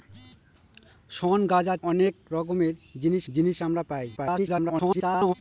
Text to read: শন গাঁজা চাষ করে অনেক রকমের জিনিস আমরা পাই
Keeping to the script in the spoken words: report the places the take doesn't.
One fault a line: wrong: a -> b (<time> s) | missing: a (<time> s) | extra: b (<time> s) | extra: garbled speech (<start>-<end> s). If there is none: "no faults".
missing: চাষ করে (1.8 s)
extra: জিনিস (3.3 s)
extra: garbled speech (4.2-5.3 s)